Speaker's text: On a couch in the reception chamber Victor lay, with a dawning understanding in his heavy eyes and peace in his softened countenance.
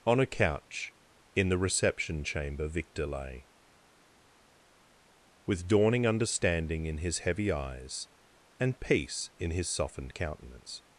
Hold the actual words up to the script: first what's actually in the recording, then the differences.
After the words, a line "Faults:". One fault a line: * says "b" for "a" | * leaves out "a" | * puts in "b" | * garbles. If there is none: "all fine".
On a couch in the reception chamber Victor lay, with dawning understanding in his heavy eyes and peace in his softened countenance.
Faults:
* leaves out "a"